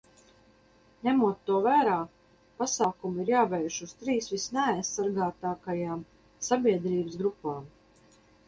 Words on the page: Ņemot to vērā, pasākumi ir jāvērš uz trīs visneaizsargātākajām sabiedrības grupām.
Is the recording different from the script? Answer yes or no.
no